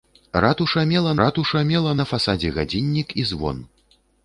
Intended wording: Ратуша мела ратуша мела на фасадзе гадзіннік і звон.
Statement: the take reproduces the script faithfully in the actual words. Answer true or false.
true